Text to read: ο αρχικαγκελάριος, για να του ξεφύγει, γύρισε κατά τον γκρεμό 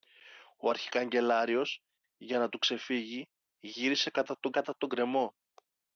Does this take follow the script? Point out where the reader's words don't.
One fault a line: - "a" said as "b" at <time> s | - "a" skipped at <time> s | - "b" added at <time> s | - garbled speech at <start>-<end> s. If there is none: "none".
- "κατά τον" added at 4.5 s